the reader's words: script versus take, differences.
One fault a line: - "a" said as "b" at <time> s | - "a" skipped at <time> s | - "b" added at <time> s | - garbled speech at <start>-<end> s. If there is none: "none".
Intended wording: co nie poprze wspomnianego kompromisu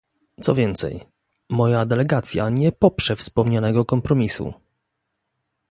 - "więcej moja delegacja" added at 0.5 s